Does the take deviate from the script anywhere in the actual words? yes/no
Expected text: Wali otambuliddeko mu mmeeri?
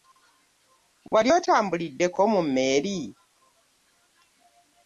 no